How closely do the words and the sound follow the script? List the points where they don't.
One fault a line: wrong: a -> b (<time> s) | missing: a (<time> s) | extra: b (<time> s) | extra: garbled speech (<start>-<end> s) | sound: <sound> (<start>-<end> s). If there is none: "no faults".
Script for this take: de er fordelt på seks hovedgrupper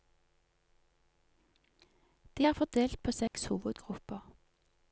sound: dropout (3.3-3.3 s)